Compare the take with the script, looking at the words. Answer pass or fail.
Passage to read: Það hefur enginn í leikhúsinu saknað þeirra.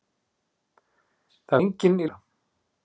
fail